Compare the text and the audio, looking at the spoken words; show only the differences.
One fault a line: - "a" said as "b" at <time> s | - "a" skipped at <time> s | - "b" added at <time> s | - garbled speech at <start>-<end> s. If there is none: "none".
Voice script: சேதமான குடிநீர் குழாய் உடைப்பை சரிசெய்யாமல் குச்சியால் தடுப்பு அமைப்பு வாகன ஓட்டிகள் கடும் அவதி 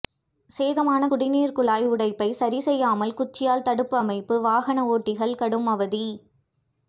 none